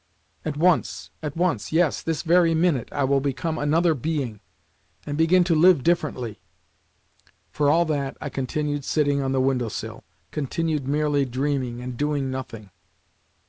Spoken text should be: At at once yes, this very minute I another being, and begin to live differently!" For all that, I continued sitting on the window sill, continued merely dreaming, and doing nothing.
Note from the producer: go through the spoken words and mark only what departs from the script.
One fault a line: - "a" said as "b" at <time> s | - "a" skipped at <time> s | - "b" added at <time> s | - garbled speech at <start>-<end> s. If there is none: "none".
- "once" added at 0.6 s
- "will become" added at 3.0 s